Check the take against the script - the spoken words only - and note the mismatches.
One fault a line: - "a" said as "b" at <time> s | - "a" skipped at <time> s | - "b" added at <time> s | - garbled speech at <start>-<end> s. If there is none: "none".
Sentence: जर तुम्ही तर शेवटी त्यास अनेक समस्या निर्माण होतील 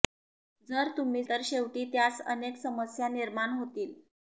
none